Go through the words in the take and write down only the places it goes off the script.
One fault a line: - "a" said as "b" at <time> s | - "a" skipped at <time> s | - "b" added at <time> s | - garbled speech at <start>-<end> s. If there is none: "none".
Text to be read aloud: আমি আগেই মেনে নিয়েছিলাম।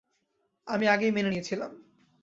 none